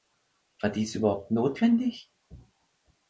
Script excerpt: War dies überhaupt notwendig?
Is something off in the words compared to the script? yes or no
no